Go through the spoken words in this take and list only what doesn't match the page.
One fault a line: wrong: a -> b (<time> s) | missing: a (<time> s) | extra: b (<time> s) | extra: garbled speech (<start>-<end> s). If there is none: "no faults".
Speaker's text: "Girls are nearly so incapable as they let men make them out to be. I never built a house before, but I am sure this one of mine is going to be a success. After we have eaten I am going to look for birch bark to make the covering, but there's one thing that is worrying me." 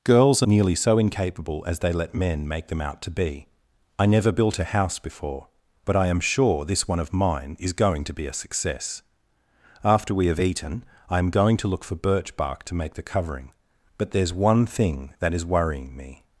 no faults